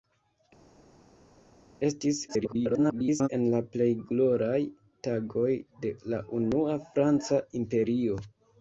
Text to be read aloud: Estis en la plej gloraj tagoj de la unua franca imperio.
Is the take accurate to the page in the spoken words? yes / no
no